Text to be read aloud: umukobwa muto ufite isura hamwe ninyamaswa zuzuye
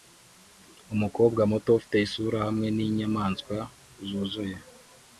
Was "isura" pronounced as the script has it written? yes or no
yes